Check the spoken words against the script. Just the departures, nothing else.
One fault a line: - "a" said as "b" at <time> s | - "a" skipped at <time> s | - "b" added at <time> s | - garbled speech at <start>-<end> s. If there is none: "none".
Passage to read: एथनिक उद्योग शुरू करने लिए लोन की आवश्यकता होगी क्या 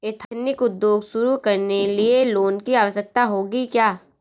none